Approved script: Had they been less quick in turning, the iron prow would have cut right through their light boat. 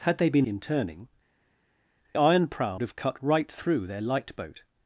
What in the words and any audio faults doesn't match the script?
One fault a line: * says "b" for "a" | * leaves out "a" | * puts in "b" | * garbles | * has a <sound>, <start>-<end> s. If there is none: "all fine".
* leaves out "less quick"
* leaves out "the"
* leaves out "would"